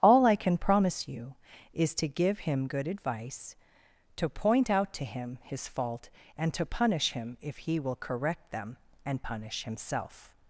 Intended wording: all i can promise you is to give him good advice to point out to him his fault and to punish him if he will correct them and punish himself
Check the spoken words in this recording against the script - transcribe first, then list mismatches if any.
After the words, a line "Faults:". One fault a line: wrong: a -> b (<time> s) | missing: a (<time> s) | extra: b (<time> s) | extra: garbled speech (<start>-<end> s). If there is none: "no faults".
all i can promise you is to give him good advice to point out to him his fault and to punish him if he will correct them and punish himself
Faults:
no faults